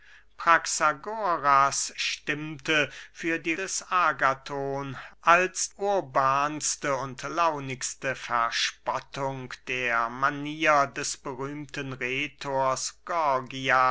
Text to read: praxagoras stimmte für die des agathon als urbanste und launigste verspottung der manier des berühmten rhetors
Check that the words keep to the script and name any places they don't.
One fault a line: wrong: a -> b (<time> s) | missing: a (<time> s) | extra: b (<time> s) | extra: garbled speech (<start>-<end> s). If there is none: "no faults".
no faults